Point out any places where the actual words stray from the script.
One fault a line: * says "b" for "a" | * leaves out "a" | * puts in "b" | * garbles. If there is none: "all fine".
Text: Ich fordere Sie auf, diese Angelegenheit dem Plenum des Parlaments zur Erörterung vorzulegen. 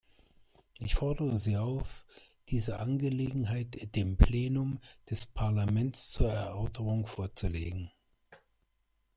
all fine